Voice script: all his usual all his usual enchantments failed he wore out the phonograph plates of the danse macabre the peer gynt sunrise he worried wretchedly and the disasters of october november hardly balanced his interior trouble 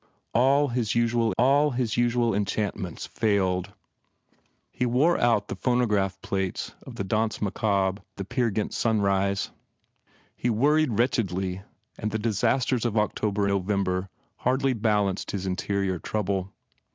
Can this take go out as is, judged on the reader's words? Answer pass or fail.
pass